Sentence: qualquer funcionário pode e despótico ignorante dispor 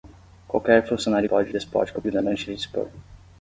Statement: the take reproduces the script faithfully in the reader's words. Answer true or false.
true